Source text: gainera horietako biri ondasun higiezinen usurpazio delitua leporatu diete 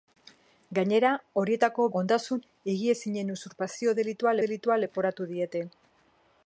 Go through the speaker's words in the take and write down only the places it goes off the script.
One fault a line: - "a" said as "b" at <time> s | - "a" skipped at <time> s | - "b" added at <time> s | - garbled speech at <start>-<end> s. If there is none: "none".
- "biri" skipped at 1.9 s
- "delitua" added at 4.5 s